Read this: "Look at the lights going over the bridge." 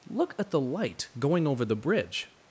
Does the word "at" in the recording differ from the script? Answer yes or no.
no